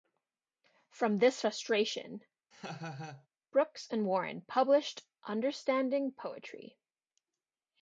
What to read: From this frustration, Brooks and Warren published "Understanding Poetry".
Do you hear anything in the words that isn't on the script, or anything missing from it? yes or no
no